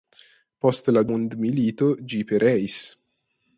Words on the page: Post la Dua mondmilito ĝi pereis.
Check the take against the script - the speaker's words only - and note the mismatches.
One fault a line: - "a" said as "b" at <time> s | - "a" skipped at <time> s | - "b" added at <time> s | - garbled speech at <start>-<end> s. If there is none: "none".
- "Dua" skipped at 1.0 s